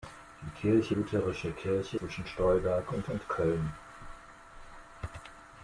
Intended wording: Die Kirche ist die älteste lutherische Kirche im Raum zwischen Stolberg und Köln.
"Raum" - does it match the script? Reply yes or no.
no